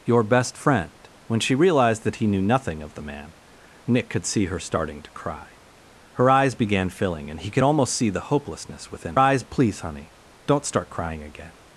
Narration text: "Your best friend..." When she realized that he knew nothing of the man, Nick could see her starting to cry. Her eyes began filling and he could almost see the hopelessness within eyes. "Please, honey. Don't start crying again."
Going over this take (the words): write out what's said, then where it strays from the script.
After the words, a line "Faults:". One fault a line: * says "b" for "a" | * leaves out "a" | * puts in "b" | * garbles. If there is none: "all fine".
"Your best friend..." When she realized that he knew nothing of the man, Nick could see her starting to cry. Her eyes began filling and he could almost see the hopelessness within eyes. "Please, honey. Don't start crying again."
Faults:
all fine